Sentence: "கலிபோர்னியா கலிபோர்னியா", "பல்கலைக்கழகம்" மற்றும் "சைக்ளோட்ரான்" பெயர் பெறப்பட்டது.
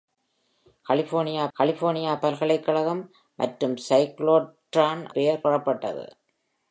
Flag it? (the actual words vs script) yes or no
no